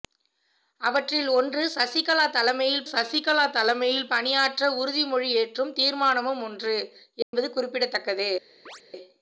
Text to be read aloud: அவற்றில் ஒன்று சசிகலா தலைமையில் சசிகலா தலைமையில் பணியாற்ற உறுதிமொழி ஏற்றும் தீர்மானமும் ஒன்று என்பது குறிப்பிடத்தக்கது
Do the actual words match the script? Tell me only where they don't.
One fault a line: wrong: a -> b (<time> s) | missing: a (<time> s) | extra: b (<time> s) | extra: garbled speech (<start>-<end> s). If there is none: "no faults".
no faults